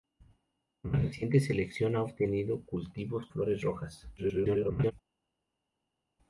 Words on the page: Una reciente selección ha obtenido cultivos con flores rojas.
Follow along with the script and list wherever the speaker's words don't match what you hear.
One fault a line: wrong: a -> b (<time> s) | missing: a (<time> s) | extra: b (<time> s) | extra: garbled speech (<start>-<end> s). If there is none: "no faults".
missing: con (3.3 s)
extra: garbled speech (4.2-4.9 s)